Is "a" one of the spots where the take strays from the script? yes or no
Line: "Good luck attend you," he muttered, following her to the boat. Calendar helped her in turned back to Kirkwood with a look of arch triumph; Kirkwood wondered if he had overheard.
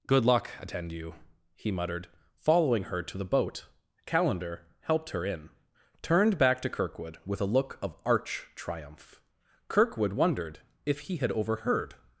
no